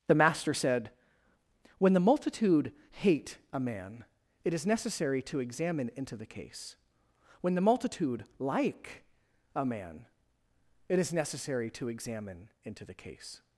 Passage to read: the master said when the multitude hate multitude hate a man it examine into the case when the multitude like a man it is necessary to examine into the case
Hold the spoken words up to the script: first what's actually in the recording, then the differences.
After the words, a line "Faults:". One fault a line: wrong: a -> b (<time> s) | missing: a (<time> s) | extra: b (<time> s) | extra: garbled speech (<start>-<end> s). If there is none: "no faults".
the master said when the multitude hate a man it is necessary to examine into the case when the multitude like a man it is necessary to examine into the case
Faults:
missing: multitude hate (3.4 s)
extra: is necessary to (4.5 s)